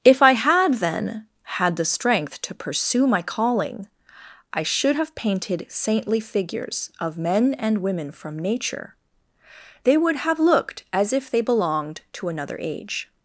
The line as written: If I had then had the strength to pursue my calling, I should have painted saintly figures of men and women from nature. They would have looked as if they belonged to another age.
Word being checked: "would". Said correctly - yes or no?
yes